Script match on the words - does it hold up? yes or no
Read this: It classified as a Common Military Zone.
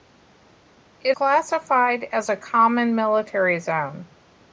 yes